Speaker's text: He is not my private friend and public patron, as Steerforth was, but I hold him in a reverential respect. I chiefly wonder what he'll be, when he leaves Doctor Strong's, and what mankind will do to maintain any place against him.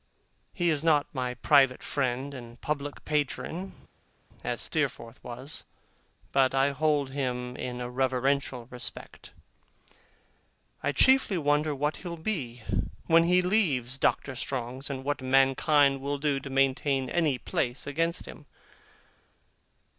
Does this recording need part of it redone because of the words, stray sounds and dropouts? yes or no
no